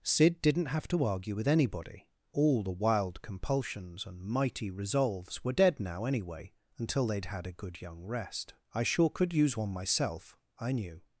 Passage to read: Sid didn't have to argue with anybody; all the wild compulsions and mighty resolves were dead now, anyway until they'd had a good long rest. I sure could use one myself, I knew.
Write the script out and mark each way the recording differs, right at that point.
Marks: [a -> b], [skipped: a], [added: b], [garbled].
Sid didn't have to argue with anybody; all the wild compulsions and mighty resolves were dead now, anyway until they'd had a good [long -> young] rest. I sure could use one myself, I knew.